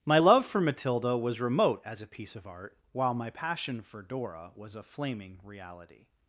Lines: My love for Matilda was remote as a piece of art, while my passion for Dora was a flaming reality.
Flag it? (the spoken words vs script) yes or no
no